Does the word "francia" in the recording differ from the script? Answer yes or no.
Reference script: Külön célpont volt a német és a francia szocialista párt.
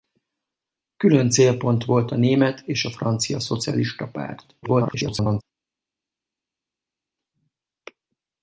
no